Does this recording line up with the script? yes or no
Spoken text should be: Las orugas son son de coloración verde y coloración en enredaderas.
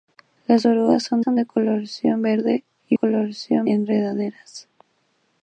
yes